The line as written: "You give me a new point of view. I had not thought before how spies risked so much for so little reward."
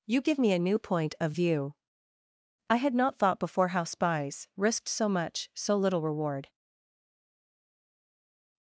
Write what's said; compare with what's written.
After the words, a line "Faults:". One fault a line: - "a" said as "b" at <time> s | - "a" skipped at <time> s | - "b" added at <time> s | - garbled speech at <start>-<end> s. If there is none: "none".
"You give me a new point of view. I had not thought before how spies risked so much so little reward."
Faults:
- "for" skipped at 5.5 s